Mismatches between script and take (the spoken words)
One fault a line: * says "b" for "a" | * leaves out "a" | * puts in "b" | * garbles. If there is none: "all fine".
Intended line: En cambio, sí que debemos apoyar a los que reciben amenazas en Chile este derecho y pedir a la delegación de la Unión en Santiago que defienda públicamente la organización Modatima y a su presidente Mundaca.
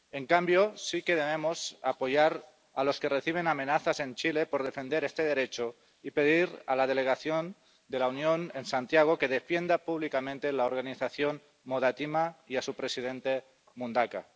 * puts in "por defender"